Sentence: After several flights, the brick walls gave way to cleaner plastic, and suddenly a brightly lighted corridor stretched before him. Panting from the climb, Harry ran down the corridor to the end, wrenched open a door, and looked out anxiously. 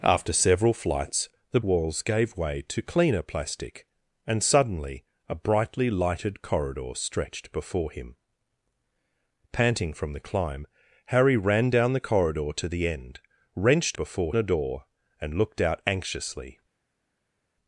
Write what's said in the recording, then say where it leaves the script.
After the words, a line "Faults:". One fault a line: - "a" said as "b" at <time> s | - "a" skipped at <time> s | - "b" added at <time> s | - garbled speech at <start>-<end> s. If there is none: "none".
After several flights, the walls gave way to cleaner plastic, and suddenly a brightly lighted corridor stretched before him. Panting from the climb, Harry ran down the corridor to the end, wrenched before a door, and looked out anxiously.
Faults:
- "brick" skipped at 1.6 s
- "open" said as "before" at 14.0 s